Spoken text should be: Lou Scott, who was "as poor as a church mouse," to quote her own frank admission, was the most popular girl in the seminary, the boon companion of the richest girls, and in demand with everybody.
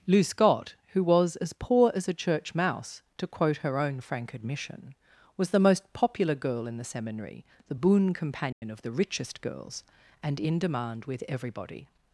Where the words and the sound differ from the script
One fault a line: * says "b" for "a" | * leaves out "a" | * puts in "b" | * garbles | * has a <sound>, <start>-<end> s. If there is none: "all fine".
* has a dropout, 8.5-8.6 s